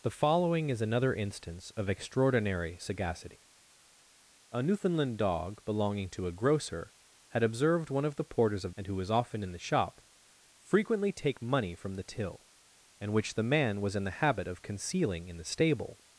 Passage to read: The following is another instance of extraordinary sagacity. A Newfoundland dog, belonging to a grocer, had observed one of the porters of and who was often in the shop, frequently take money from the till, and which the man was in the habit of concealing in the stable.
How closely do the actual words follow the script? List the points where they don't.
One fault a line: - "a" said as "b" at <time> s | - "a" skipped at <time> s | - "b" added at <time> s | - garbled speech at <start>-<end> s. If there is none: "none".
none